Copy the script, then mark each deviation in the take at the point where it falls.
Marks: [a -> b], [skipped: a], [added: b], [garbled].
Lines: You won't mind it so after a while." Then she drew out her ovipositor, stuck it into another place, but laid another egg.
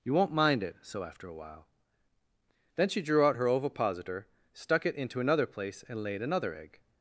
You won't mind it so after a while." Then she drew out her ovipositor, stuck it into another place, [but -> and] laid another egg.